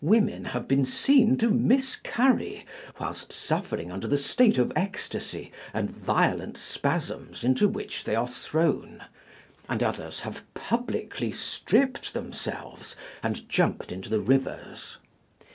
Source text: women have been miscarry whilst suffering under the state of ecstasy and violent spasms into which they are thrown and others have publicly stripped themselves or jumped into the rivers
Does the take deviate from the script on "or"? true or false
true